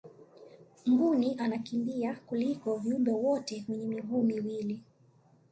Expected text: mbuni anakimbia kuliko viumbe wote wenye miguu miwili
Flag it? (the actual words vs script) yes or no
no